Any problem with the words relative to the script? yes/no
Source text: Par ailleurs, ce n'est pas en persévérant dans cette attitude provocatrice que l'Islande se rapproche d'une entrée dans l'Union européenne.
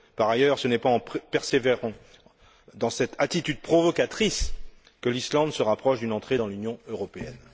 no